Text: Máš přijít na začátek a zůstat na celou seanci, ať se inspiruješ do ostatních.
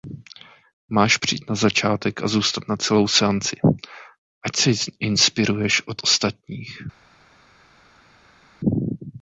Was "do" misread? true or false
true